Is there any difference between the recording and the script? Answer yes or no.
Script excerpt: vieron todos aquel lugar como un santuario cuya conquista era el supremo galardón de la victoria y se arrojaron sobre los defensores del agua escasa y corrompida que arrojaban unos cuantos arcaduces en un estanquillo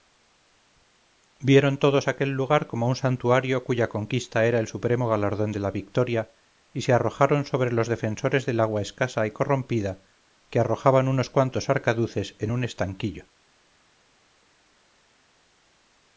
no